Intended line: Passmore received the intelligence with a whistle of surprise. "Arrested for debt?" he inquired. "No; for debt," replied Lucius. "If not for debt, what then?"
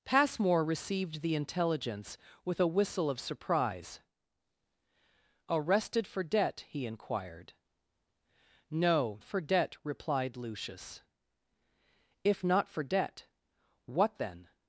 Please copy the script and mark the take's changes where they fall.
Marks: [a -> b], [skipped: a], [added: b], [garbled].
Passmore received the intelligence with a whistle of surprise. "Arrested for debt?" he inquired. "No; for debt," replied Lucius. "If not for debt, what then?"